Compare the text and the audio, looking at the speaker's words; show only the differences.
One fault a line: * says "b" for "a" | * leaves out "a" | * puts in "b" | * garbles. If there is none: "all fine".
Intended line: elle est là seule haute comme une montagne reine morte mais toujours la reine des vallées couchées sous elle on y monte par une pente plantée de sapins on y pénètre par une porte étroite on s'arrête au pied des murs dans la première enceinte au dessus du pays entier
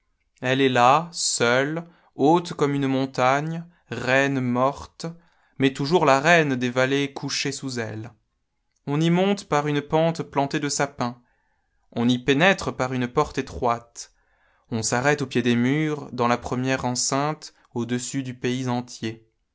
all fine